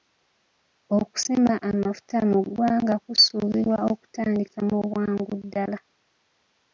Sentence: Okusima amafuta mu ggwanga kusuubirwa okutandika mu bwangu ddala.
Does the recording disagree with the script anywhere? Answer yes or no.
no